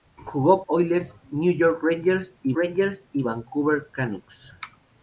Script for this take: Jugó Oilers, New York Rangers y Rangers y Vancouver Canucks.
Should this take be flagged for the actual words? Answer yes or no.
no